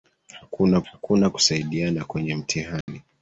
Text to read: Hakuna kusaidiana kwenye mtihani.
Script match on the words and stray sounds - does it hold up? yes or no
no